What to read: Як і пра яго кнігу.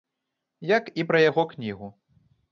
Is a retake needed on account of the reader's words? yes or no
no